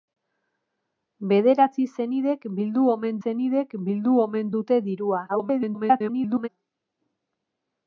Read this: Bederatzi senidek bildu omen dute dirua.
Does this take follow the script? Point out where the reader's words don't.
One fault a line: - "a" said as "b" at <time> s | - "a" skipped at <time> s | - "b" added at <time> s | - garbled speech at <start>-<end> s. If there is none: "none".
- "senidek bildu omen" added at 3.2 s
- garbled speech at 5.3-6.5 s